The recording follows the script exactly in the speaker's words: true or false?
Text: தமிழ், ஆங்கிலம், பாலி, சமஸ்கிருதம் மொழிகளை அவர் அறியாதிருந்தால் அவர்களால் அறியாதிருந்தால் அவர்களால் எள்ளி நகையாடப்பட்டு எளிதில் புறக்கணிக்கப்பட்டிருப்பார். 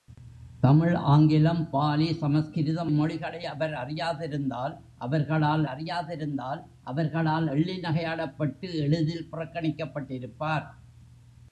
true